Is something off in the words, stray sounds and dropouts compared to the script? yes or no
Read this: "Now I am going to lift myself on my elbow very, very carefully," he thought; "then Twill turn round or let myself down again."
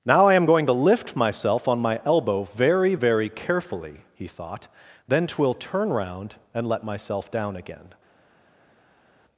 yes